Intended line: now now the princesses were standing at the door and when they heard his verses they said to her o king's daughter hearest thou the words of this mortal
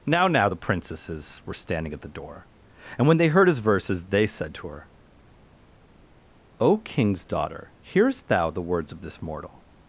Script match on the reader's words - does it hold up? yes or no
yes